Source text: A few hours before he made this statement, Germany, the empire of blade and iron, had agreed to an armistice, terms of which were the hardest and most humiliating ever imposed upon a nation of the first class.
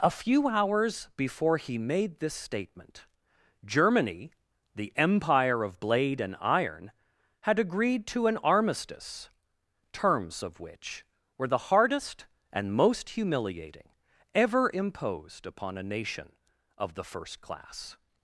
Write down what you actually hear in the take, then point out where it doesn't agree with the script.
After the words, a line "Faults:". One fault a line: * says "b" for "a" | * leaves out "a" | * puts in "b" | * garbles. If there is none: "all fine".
A few hours before he made this statement, Germany, the empire of blade and iron, had agreed to an armistice, terms of which were the hardest and most humiliating ever imposed upon a nation of the first class.
Faults:
all fine